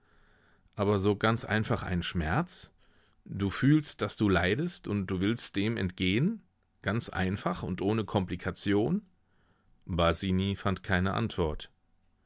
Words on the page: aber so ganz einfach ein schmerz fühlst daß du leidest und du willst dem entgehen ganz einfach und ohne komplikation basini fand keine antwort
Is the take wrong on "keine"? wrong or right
right